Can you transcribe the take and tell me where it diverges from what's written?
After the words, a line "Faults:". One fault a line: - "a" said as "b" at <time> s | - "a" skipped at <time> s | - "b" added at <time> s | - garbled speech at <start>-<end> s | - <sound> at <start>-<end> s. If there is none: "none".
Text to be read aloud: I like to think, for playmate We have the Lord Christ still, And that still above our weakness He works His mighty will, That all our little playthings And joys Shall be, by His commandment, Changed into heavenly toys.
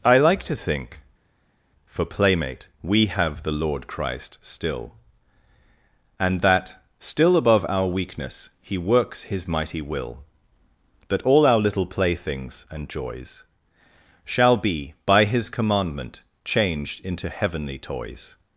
I like to think, for playmate We have the Lord Christ still, And that still above our weakness He works His mighty will, That all our little playthings And joys Shall be, by His commandment, Changed into heavenly toys.
Faults:
none